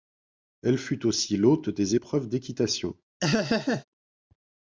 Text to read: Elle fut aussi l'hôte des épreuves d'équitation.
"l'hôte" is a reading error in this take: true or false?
false